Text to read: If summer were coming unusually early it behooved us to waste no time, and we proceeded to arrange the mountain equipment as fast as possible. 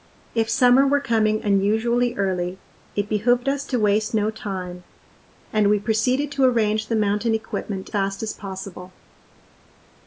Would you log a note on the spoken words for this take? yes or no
yes